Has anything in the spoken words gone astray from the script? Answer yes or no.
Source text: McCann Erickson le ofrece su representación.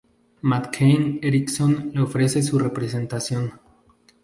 no